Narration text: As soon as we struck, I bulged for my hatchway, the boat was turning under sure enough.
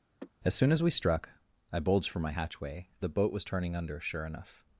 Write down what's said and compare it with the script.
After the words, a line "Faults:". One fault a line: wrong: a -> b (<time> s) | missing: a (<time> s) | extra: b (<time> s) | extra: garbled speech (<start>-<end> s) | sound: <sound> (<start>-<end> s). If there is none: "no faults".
As soon as we struck, I bulged for my hatchway, the boat was turning under sure enough.
Faults:
sound: sigh (0.2-0.3 s)